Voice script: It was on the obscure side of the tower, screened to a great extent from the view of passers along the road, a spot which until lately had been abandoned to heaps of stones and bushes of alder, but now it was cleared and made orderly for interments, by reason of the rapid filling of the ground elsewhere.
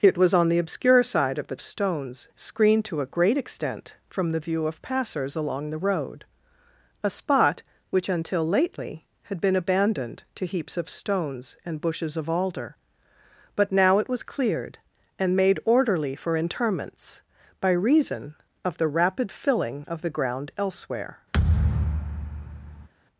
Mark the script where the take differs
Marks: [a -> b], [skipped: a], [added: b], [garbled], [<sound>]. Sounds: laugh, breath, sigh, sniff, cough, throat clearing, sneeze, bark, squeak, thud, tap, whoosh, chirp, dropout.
It was on the obscure side of the [tower, -> stones] screened to a great extent from the view of passers along the road, a spot which until lately had been abandoned to heaps of stones and bushes of alder, but now it was cleared and made orderly for interments, by reason of the rapid filling of the ground elsewhere. [thud]